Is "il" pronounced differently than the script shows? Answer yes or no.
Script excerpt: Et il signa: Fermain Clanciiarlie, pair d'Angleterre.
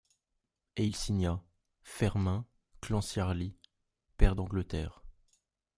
no